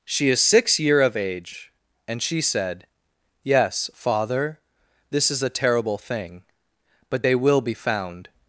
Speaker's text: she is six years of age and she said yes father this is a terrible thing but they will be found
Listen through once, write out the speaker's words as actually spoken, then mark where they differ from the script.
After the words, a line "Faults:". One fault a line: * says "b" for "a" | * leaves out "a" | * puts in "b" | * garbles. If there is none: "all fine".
she is six year of age and she said yes father this is a terrible thing but they will be found
Faults:
* says "year" for "years"